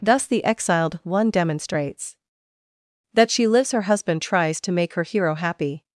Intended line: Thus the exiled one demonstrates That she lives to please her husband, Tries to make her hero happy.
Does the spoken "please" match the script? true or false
false